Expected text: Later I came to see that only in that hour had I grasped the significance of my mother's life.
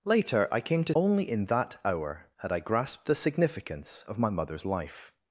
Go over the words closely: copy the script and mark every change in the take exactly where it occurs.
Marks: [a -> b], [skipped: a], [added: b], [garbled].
Later I came to [skipped: see that] only in that hour had I grasped the significance of my mother's life.